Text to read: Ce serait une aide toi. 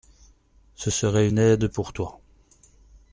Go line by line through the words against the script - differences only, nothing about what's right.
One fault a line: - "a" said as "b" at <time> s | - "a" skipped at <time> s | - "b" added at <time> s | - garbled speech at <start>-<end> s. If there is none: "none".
- "pour" added at 1.7 s